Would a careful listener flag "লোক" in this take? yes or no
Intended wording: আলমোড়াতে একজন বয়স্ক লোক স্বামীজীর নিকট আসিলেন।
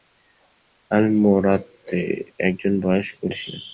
yes